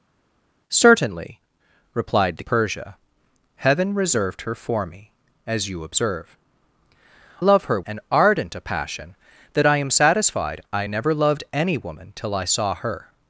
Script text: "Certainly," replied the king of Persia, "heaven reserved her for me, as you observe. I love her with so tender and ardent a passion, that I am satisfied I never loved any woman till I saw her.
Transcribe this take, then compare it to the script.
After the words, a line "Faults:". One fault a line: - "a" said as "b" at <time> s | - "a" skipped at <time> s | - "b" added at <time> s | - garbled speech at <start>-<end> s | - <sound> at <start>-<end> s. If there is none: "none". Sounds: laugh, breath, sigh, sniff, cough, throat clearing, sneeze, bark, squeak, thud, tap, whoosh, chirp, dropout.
"Certainly," replied the Persia, "heaven reserved her for me, as you observe. love her and ardent a passion, that I am satisfied I never loved any woman till I saw her.
Faults:
- "king of" skipped at 2.4 s
- "I" skipped at 6.4 s
- "with so tender" skipped at 7.8 s